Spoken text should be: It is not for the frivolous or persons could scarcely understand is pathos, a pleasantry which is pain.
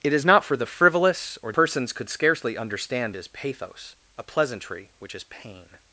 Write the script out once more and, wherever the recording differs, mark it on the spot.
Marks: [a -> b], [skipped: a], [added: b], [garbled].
It is not for the frivolous or persons could scarcely understand is pathos, a pleasantry which is pain.